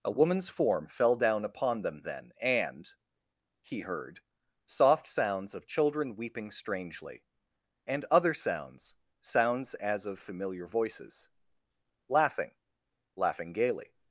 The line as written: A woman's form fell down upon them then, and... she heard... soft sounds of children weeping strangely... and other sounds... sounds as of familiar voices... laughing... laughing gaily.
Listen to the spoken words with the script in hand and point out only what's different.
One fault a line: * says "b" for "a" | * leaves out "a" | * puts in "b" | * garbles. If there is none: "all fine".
* says "he" for "she"